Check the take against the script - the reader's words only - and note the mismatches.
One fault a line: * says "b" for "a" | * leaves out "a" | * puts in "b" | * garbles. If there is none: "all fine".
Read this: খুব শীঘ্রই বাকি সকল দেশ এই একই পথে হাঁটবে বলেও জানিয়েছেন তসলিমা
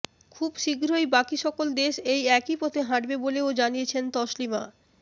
all fine